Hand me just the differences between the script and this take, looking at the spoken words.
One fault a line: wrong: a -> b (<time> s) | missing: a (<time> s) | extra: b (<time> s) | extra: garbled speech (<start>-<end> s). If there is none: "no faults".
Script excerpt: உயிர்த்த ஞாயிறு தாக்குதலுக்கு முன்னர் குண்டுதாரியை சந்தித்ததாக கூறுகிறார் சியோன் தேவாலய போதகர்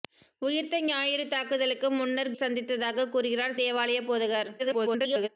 missing: குண்டுதாரியை (2.3 s)
missing: சியோன் (3.6 s)
extra: garbled speech (4.6-5.3 s)